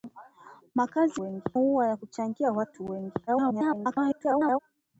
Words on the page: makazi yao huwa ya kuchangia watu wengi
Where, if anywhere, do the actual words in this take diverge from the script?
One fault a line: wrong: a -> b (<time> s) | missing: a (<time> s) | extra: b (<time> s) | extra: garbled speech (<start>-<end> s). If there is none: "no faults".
wrong: yao -> wengi (1.2 s)
extra: garbled speech (3.3-4.6 s)